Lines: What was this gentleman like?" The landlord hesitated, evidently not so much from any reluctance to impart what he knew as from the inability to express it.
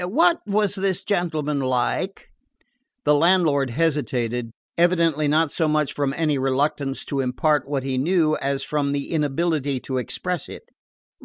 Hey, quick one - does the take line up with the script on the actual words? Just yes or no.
yes